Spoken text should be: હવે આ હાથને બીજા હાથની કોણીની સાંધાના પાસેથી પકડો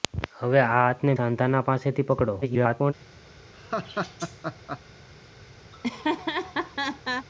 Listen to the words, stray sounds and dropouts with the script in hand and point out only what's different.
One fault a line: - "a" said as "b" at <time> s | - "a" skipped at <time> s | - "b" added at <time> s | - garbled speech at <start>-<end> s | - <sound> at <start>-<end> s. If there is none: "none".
- "બીજા હાથની કોણીની" skipped at 1.1 s
- garbled speech at 2.4-2.9 s
- laugh at 3.5-4.8 s
- laugh at 5.7-7.3 s